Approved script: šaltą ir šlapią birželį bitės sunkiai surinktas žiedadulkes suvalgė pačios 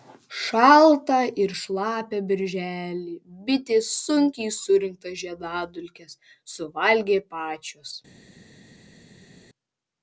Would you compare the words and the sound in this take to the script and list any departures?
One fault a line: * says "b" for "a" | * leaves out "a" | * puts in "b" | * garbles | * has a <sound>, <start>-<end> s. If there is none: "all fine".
all fine